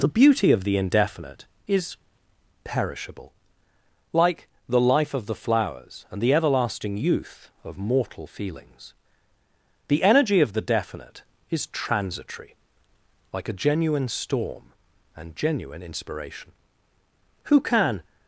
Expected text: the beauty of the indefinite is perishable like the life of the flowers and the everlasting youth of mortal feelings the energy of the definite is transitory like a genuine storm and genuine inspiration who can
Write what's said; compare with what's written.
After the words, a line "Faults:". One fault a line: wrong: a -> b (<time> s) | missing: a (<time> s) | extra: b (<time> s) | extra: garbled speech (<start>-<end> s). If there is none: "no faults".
the beauty of the indefinite is perishable like the life of the flowers and the everlasting youth of mortal feelings the energy of the definite is transitory like a genuine storm and genuine inspiration who can
Faults:
no faults